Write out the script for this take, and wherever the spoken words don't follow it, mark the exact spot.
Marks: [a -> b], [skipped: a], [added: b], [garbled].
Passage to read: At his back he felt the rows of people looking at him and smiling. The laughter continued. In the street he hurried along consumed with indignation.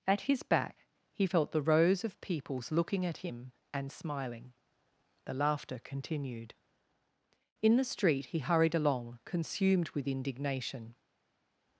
At his back he felt the rows of [people -> peoples] looking at him and smiling. The laughter continued. In the street he hurried along consumed with indignation.